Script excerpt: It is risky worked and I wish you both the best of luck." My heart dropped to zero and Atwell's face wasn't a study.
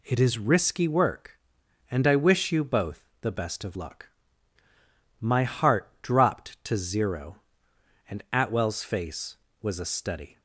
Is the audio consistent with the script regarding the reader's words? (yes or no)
no